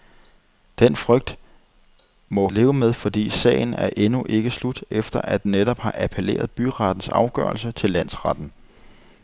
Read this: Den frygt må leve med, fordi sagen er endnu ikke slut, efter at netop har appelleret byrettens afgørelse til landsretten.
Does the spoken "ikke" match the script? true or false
true